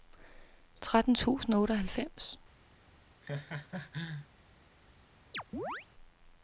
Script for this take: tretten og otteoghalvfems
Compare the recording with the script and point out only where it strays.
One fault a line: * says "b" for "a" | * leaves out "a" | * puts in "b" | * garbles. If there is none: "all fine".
* puts in "tusind"